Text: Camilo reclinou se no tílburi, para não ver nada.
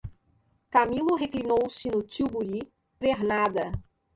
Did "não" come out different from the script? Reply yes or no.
yes